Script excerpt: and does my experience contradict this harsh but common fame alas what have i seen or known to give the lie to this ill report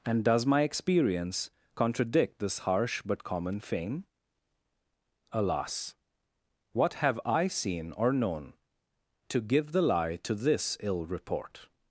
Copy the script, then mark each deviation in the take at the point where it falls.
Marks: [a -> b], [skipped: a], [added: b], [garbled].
and does my experience contradict this harsh but common fame alas what have i seen or known to give the lie to this ill report